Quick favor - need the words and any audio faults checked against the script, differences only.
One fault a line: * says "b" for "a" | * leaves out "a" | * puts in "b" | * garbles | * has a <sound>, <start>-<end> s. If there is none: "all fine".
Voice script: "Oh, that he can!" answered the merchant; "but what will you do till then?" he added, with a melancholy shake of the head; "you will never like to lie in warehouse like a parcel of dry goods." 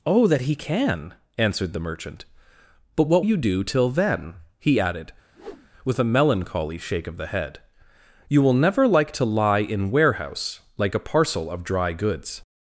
* leaves out "will"
* has a whoosh, 5.3-5.7 s